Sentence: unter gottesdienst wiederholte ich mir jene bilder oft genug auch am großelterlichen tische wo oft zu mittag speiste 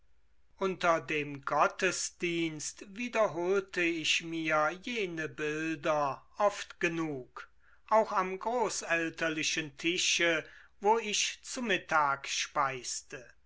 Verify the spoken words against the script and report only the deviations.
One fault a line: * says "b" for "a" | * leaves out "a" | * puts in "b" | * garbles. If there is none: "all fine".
* puts in "dem"
* says "ich" for "oft"